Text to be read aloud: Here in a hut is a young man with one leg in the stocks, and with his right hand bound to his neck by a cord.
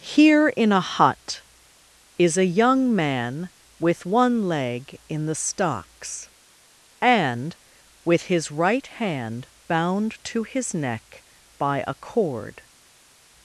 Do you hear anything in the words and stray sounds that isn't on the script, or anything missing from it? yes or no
no